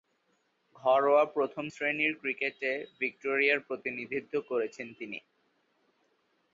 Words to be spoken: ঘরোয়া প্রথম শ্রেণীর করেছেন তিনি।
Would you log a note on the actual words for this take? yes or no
yes